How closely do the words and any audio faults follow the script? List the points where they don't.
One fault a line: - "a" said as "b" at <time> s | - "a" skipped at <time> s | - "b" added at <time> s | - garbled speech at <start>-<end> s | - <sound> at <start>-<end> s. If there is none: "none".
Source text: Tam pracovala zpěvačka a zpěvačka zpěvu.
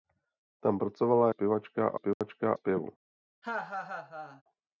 - dropout at 2.1-2.2 s
- laugh at 3.4-4.4 s